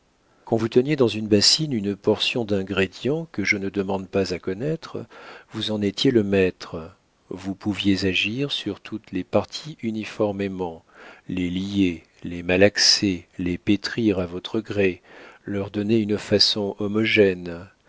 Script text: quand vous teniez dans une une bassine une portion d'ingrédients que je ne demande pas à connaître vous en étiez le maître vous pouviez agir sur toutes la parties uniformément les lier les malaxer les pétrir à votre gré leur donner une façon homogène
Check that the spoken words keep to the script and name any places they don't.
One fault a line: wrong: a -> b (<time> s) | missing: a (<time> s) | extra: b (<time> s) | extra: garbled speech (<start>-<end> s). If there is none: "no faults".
missing: une (1.3 s)
wrong: la -> les (9.1 s)